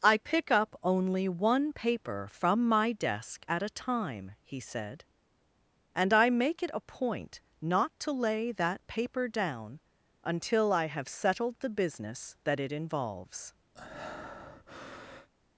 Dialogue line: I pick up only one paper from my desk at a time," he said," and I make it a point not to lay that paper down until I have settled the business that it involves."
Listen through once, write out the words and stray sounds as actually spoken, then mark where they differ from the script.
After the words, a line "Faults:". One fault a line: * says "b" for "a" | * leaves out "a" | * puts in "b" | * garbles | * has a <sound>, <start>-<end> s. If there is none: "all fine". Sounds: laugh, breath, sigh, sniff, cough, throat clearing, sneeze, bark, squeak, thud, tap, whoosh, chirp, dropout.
I pick up only one paper from my desk at a time," he said," and I make it a point not to lay that paper down until I have settled the business that it involves."
Faults:
* has a breath, 13.8-15.3 s